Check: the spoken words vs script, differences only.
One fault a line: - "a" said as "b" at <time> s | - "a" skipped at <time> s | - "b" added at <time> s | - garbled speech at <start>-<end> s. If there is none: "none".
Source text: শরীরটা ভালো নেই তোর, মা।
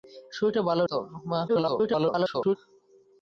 - "নেই" skipped at 0.8 s
- garbled speech at 1.5-2.6 s